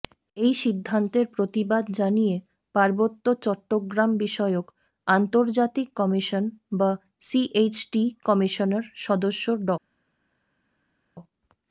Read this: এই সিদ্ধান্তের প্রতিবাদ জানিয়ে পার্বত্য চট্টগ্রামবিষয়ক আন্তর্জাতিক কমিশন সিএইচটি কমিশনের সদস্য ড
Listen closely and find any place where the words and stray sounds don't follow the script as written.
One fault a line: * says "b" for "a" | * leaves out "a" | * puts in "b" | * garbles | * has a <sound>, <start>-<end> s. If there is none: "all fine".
* puts in "বা"